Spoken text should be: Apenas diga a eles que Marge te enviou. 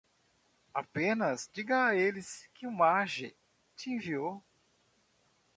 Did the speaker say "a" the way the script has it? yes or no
yes